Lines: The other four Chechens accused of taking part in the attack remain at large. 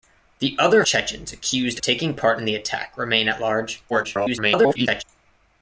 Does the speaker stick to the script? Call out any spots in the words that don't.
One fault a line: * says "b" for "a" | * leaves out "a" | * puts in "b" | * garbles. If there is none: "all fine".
* leaves out "four"
* leaves out "of"
* garbles